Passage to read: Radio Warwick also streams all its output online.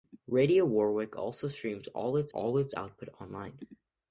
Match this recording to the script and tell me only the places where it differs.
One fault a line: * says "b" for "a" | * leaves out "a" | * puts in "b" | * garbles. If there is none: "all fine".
* puts in "all its"